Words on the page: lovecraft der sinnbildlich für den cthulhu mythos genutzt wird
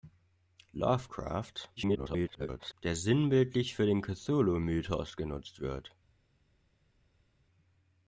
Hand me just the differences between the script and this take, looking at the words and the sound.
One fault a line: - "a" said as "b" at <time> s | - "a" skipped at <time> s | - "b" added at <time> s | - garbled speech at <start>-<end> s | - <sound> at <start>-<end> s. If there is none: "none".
- garbled speech at 1.8-2.7 s